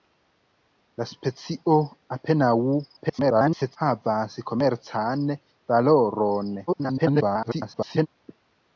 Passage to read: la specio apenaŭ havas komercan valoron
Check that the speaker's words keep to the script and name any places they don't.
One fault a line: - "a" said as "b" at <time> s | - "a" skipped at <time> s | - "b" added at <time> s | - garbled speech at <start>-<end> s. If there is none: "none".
- garbled speech at 3.0-3.8 s
- garbled speech at 6.7-8.1 s